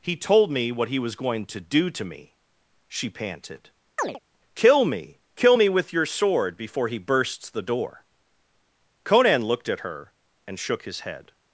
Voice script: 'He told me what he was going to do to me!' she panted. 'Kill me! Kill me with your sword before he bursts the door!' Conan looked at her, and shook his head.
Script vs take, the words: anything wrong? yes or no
no